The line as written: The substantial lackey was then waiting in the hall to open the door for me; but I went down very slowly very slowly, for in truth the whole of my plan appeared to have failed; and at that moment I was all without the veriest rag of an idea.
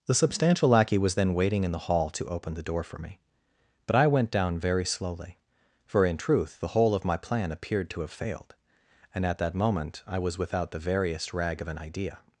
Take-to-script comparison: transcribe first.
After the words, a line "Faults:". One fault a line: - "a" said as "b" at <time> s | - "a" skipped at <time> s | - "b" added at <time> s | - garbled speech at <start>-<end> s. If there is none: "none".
The substantial lackey was then waiting in the hall to open the door for me; but I went down very slowly, for in truth the whole of my plan appeared to have failed; and at that moment I was without the veriest rag of an idea.
Faults:
- "very slowly" skipped at 5.4 s
- "all" skipped at 10.4 s